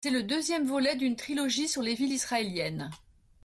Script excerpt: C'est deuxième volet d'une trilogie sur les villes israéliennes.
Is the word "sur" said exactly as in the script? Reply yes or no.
yes